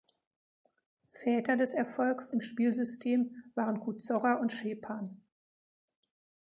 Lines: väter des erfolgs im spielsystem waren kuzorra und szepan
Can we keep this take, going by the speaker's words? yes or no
yes